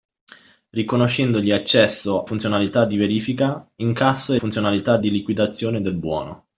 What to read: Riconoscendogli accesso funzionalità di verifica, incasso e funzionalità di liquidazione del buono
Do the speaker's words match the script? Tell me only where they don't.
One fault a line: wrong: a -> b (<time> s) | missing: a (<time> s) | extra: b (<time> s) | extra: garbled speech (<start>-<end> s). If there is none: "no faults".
no faults